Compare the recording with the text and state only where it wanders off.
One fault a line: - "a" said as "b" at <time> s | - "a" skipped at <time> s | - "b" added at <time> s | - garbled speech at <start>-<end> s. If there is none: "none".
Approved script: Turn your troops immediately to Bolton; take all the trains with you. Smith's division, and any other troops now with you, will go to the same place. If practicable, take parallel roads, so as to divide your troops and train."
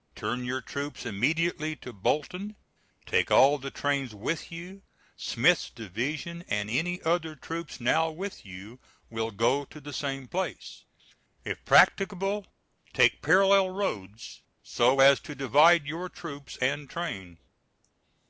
none